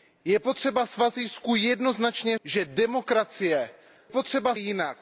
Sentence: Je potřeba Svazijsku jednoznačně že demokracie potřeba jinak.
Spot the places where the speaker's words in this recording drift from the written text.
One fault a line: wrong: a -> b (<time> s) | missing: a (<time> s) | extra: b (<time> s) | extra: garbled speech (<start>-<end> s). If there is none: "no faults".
no faults